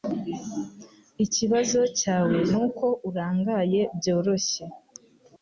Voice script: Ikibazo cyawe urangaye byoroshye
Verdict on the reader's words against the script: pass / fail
fail